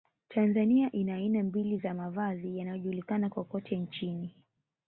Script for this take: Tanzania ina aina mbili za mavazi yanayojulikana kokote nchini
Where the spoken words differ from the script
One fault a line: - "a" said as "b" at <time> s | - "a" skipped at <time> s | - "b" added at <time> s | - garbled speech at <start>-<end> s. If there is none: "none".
none